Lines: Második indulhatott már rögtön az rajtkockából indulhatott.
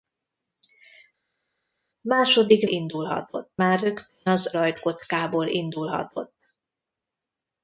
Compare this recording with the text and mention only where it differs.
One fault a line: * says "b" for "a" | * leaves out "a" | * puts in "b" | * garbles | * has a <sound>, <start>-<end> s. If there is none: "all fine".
all fine